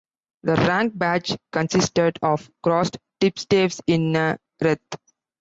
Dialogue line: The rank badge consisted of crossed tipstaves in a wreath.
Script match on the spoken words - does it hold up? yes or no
yes